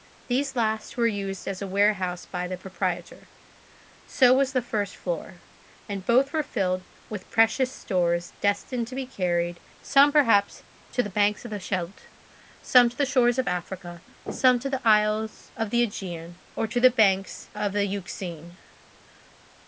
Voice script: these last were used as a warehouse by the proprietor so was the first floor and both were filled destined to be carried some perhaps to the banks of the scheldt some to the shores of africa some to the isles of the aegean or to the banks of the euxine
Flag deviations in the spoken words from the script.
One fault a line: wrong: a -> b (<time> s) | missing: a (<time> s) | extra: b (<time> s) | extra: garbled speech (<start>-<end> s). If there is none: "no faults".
extra: with precious stores (7.1 s)